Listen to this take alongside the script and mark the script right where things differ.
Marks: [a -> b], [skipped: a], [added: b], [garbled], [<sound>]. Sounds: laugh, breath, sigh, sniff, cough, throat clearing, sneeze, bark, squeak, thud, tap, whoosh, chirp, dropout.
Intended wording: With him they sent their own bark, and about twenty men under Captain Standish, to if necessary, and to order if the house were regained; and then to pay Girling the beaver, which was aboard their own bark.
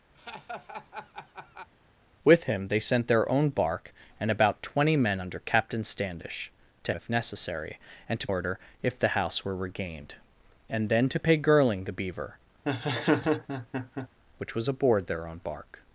[laugh] With him they sent their own bark, and about twenty men under Captain Standish, to if necessary, and to order if the house were regained; and then to pay Girling the beaver, [laugh] which was aboard their own bark.